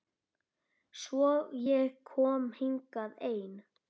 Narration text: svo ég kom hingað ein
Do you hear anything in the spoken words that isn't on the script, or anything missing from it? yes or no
no